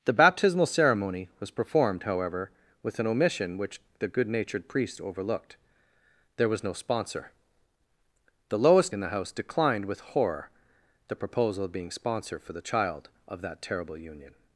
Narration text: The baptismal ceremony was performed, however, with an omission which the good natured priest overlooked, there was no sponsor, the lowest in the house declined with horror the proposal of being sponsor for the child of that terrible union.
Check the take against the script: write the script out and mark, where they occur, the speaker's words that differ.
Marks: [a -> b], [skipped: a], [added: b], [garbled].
The baptismal ceremony was performed, however, with an omission which the good natured priest overlooked, there was no sponsor, the lowest in the house declined with horror the proposal of being sponsor for the child of that terrible union.